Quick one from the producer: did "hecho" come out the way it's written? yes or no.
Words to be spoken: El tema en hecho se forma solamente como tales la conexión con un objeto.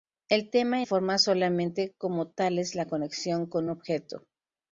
no